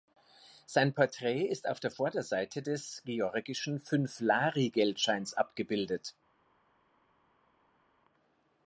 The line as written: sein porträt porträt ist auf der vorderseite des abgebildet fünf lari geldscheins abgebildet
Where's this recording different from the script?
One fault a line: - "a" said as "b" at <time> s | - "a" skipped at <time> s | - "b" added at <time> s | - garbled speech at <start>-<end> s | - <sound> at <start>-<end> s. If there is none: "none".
- "porträt" skipped at 1.4 s
- "abgebildet" said as "georgischen" at 3.0 s